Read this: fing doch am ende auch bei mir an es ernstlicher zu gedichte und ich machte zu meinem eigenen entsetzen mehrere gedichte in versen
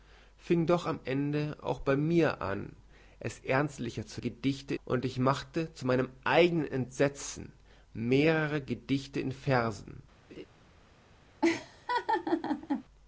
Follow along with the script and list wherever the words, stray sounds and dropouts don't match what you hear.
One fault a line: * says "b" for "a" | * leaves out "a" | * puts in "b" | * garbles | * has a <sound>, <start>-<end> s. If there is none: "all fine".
* has a laugh, 10.3-10.5 s
* has a laugh, 11.4-12.8 s